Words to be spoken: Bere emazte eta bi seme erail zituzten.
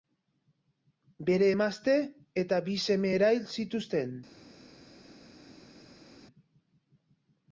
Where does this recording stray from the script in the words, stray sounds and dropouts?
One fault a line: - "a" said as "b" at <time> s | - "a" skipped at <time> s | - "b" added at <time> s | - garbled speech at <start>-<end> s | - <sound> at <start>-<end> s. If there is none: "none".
none